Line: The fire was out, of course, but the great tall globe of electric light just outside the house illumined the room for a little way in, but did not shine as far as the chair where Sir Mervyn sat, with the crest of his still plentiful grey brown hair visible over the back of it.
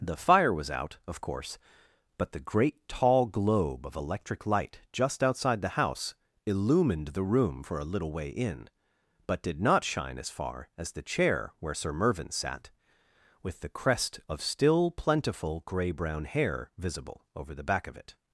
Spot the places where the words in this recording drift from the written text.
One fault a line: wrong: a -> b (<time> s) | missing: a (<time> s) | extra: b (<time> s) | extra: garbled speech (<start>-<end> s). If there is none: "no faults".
missing: his (14.4 s)